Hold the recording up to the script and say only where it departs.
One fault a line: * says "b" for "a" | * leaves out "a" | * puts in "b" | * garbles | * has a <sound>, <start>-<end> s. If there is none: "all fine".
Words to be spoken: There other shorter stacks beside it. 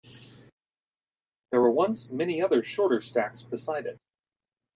* puts in "were once many"